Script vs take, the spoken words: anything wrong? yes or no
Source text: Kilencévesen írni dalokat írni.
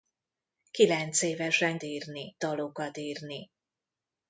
no